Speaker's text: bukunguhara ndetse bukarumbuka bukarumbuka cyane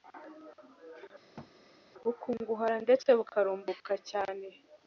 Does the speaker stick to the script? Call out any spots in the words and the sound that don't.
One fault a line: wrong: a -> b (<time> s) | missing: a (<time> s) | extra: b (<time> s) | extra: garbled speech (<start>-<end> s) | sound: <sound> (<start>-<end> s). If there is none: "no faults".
sound: thud (1.4-1.5 s)
missing: bukarumbuka (3.9 s)